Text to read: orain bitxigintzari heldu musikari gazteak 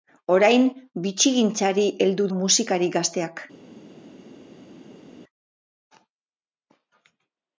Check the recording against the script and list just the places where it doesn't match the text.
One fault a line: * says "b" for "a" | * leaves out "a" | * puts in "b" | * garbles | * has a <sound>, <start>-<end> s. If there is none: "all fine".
all fine